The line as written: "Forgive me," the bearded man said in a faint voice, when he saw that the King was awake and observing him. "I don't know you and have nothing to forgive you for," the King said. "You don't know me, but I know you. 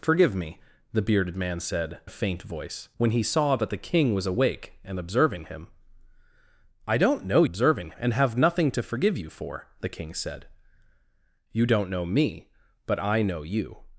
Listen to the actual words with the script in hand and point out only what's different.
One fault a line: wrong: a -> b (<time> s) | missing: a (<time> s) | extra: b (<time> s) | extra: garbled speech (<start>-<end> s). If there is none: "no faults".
missing: in (2.0 s)
wrong: you -> observing (7.4 s)